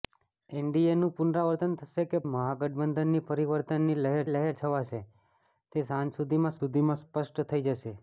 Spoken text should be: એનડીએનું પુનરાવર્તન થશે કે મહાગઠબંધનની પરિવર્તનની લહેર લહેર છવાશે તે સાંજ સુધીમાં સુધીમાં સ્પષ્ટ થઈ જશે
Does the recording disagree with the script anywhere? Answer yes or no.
no